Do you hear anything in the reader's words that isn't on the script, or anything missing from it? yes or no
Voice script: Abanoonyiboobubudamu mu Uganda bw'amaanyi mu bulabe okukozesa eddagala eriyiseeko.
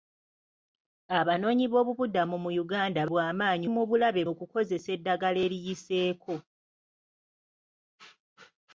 no